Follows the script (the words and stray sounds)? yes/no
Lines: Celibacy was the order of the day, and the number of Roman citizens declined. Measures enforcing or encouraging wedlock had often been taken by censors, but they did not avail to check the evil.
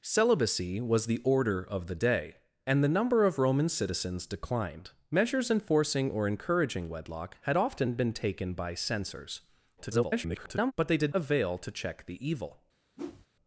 no